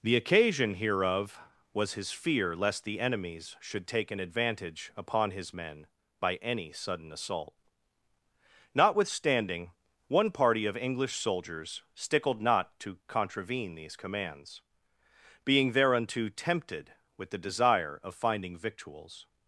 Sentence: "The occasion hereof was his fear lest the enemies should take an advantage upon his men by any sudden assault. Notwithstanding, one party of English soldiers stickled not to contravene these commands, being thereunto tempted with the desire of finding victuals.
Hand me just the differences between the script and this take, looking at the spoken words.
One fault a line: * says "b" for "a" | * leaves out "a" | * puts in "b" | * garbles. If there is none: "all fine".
all fine